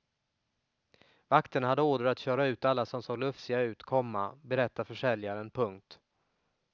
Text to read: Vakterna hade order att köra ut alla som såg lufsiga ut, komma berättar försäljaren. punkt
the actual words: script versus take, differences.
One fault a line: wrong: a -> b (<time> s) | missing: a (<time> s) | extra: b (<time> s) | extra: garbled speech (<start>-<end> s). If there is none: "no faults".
no faults